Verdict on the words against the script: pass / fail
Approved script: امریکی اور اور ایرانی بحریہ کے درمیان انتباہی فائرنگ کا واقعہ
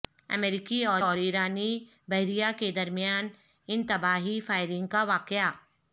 pass